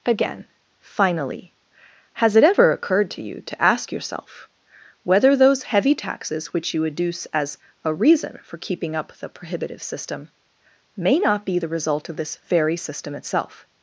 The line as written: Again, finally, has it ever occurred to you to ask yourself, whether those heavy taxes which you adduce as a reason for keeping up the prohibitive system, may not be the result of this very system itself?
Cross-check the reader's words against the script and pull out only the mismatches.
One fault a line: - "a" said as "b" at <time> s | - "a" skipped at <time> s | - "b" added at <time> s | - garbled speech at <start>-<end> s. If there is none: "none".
none